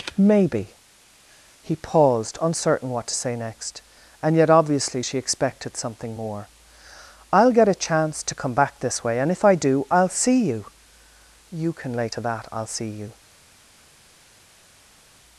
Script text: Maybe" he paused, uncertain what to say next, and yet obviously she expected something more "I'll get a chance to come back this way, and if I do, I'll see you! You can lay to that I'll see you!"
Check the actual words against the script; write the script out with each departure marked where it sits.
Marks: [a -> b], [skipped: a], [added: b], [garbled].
Maybe" he paused, uncertain what to say next, and yet obviously she expected something more "I'll get a chance to come back this way, and if I do, I'll see you! You can lay to that I'll see you!"